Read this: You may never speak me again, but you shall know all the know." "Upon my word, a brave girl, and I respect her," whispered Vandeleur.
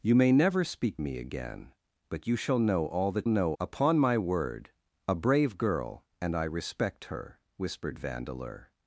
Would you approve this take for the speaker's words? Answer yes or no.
yes